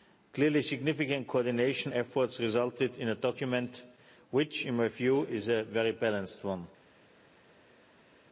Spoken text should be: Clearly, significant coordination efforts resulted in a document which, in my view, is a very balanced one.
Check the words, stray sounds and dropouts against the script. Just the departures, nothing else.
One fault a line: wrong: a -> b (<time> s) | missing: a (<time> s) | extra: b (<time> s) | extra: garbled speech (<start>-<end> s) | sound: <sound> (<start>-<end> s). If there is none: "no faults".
no faults